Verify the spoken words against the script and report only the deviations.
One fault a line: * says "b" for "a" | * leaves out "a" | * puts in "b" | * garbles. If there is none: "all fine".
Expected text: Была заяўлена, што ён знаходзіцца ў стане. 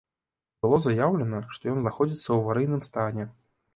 * says "Было" for "Была"
* puts in "аварыйным"